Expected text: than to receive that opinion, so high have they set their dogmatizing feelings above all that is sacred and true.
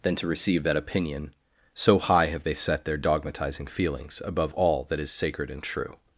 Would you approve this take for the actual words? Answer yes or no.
yes